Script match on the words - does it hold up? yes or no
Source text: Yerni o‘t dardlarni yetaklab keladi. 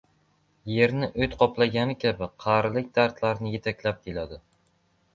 no